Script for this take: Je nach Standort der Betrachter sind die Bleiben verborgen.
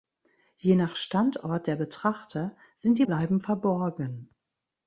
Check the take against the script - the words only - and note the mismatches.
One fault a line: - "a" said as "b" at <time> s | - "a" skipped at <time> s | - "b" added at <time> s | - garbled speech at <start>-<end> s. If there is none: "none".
none